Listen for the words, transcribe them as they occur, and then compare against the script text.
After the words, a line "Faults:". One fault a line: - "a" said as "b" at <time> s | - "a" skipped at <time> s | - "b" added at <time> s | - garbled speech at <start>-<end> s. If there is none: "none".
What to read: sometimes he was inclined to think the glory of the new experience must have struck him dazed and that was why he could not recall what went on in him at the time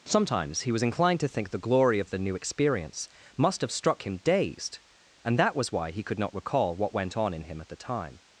sometimes he was inclined to think the glory of the new experience must have struck him dazed and that was why he could not recall what went on in him at the time
Faults:
none